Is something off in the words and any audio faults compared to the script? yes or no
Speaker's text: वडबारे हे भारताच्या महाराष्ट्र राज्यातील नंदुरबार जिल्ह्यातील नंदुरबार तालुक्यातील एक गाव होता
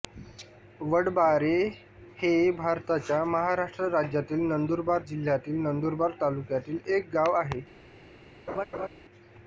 yes